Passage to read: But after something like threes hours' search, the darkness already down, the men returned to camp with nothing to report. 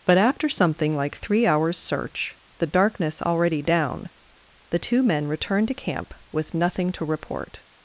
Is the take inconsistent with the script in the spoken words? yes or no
yes